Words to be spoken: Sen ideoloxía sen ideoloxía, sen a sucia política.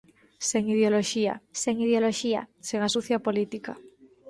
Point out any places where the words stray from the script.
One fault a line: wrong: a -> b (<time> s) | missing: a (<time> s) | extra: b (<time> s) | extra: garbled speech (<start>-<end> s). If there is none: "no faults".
no faults